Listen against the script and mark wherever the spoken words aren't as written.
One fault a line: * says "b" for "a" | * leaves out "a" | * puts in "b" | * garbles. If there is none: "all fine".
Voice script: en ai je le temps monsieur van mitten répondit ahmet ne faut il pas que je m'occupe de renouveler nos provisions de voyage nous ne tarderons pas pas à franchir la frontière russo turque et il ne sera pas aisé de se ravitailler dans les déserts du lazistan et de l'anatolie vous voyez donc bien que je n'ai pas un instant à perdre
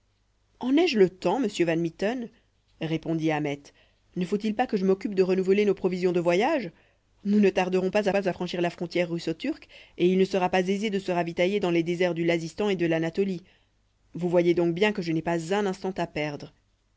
all fine